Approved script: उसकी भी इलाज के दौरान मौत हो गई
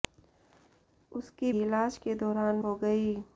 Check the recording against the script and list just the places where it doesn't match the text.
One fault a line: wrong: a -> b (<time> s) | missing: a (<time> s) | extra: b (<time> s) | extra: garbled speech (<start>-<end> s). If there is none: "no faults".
missing: भी (1.5 s)
missing: मौत (2.6 s)